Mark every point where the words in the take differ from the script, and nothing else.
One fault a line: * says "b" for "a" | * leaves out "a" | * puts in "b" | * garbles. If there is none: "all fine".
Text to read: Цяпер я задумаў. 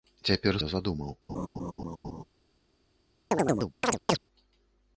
all fine